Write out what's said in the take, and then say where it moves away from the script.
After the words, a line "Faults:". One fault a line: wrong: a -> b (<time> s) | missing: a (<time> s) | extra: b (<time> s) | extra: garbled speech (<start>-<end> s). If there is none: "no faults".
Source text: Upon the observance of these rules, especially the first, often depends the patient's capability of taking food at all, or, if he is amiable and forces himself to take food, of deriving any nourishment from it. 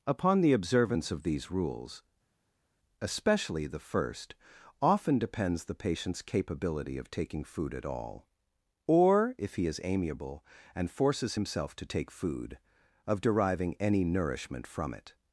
Upon the observance of these rules, especially the first, often depends the patient's capability of taking food at all, or, if he is amiable and forces himself to take food, of deriving any nourishment from it.
Faults:
no faults